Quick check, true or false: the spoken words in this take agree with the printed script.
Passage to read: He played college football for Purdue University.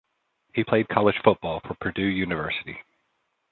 true